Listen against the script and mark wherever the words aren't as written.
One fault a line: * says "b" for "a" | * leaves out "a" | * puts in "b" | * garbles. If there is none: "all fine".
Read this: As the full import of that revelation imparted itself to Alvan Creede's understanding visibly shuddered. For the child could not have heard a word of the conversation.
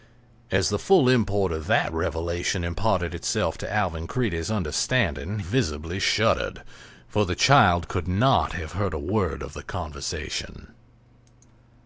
all fine